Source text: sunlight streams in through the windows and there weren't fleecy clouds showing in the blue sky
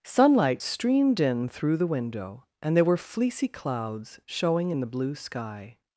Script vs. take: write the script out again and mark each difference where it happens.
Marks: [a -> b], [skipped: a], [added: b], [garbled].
sunlight [streams -> streamed] in through the [windows -> window] and there [weren't -> were] fleecy clouds showing in the blue sky